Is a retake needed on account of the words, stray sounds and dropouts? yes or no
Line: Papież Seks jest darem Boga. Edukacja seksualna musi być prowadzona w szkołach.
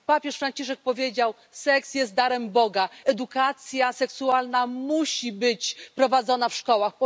yes